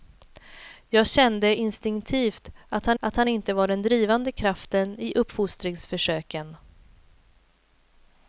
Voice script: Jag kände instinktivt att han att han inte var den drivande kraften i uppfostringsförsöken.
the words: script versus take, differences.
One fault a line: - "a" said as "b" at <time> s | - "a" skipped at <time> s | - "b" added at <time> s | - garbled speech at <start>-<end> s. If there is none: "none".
none